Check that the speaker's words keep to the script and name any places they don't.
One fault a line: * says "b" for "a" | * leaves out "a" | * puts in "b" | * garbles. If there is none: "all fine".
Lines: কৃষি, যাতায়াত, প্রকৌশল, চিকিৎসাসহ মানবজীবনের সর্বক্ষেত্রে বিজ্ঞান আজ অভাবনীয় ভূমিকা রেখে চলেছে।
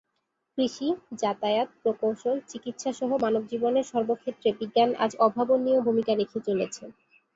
all fine